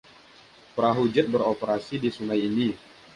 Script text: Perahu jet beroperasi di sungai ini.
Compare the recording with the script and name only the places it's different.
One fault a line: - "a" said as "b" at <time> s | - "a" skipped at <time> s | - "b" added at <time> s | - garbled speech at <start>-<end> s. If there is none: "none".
none